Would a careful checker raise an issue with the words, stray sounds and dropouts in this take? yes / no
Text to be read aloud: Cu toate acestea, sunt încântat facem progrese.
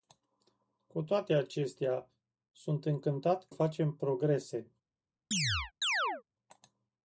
yes